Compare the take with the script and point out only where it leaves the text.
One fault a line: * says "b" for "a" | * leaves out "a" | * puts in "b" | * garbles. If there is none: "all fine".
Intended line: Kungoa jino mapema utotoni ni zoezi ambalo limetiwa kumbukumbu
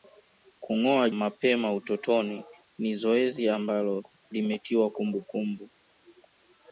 * leaves out "jino"